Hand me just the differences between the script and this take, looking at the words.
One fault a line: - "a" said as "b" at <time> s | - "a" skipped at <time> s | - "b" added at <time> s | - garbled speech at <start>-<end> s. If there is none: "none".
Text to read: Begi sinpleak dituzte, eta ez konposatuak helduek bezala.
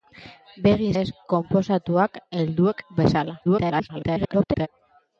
- "sinpleak dituzte eta" skipped at 0.9 s
- garbled speech at 3.4-4.7 s